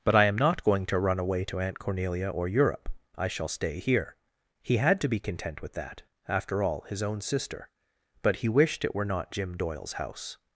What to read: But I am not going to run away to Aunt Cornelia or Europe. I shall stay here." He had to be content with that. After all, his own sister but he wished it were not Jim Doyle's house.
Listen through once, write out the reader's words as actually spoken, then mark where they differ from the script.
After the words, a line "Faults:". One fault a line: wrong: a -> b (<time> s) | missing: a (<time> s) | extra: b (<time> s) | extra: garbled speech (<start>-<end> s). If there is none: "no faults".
But I am not going to run away to Aunt Cornelia or Europe. I shall stay here." He had to be content with that. After all, his own sister but he wished it were not Jim Doyle's house.
Faults:
no faults